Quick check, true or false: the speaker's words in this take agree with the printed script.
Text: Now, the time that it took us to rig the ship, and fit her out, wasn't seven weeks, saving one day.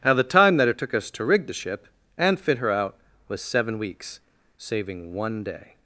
false